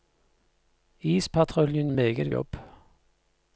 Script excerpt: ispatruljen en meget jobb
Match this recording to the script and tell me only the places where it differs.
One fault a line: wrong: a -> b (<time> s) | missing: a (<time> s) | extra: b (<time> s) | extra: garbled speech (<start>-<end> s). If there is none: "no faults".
no faults